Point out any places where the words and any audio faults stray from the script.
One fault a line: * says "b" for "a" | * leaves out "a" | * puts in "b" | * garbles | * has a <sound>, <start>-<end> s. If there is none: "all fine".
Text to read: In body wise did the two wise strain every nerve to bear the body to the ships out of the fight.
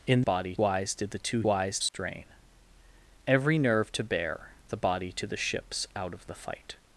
* has a dropout, 1.9-1.9 s